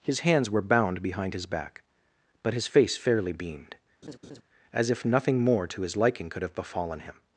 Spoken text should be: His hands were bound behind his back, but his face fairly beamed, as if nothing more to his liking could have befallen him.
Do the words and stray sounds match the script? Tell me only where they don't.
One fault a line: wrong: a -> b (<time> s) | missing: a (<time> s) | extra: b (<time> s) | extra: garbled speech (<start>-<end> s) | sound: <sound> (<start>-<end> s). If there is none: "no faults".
sound: laugh (4.0-4.4 s)